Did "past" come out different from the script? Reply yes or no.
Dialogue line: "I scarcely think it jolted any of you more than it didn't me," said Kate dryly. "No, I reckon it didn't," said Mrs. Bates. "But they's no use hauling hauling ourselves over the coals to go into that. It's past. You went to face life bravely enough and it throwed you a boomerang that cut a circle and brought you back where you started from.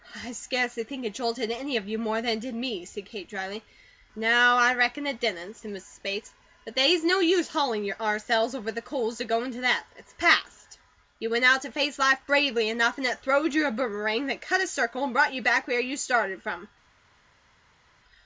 no